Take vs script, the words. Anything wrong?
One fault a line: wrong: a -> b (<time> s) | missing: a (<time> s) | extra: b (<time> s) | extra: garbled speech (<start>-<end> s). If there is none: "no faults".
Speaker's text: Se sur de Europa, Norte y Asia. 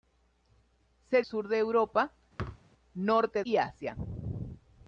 no faults